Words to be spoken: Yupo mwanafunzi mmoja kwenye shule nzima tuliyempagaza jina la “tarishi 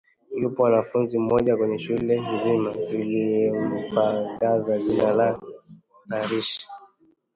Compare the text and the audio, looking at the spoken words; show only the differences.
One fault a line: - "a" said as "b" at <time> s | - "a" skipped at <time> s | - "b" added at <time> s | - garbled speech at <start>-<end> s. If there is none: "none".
none